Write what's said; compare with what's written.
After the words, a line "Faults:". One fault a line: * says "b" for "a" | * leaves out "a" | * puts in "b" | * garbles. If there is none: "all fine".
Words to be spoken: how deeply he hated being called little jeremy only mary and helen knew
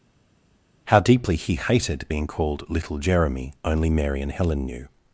how deeply he hated being called little jeremy only mary and helen knew
Faults:
all fine